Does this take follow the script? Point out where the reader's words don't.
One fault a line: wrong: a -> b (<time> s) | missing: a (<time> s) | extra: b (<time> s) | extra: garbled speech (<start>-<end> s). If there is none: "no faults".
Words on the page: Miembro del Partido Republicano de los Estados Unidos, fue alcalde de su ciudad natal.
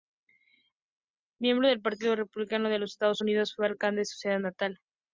no faults